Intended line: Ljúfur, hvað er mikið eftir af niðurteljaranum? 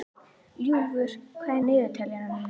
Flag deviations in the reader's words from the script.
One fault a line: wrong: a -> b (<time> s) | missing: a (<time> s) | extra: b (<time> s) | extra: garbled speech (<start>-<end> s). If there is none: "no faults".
missing: mikið eftir (1.6 s)